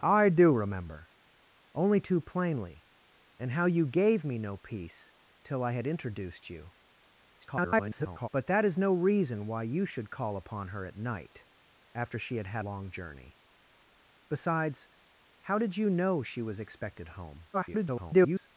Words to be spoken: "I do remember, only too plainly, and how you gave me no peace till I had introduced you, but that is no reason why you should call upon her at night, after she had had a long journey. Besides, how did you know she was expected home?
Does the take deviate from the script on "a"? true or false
true